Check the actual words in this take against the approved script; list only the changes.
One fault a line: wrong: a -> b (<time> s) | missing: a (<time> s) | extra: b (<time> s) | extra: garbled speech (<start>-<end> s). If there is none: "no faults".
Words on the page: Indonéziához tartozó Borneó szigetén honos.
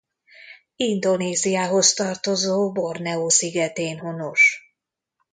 no faults